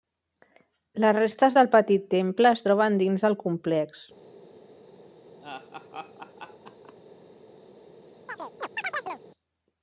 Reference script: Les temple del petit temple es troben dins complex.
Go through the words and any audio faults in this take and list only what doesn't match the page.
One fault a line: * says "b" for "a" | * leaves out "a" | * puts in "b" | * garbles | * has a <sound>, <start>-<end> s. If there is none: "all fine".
* says "restes" for "temple"
* puts in "del"
* has a laugh, 5.4-6.9 s
* has a chirp, 8.3-9.2 s